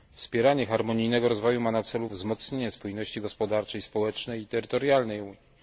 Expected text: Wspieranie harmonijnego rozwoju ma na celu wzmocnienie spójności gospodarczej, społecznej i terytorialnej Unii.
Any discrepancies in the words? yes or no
no